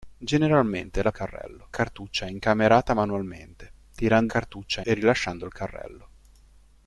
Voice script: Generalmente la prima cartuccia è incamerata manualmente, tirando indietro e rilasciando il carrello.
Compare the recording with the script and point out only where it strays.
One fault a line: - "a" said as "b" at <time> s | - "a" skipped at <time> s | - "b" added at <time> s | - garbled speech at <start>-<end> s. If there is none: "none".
- "prima" said as "carrello" at 1.1 s
- "indietro" said as "cartuccia" at 4.3 s